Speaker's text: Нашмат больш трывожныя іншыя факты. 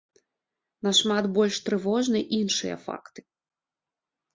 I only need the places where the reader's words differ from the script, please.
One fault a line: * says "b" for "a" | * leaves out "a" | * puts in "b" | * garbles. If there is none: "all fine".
all fine